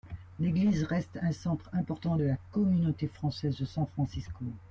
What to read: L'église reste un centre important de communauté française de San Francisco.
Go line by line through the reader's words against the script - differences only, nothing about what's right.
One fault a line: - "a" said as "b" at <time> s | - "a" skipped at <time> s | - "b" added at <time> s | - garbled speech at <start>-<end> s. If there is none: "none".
- "la" added at 2.2 s